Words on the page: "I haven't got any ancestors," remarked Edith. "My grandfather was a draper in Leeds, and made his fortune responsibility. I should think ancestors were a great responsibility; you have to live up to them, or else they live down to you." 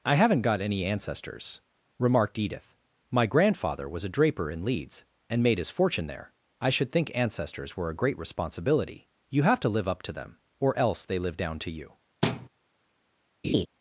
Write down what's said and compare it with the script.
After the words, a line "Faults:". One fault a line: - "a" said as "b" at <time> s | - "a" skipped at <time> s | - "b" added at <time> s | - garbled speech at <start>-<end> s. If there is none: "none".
"I haven't got any ancestors," remarked Edith. "My grandfather was a draper in Leeds, and made his fortune there. I should think ancestors were a great responsibility; you have to live up to them, or else they live down to you."
Faults:
- "responsibility" said as "there" at 6.1 s